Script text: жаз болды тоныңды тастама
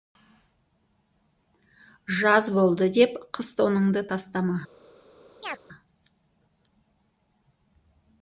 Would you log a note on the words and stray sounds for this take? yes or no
yes